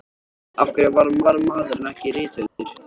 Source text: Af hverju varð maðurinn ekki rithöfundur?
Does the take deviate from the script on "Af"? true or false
false